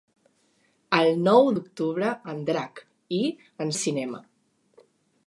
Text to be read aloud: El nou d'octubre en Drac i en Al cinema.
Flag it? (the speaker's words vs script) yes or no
no